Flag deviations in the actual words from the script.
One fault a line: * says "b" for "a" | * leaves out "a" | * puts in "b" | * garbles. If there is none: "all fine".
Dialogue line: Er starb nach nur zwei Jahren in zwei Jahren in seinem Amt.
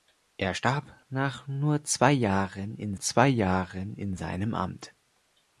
all fine